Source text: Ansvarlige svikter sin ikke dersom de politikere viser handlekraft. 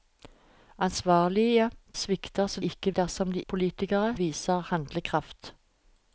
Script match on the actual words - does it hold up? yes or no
yes